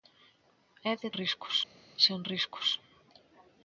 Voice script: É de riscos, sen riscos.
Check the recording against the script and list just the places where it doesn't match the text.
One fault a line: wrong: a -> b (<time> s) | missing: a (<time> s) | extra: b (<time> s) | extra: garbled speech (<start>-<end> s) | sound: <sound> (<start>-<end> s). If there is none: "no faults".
no faults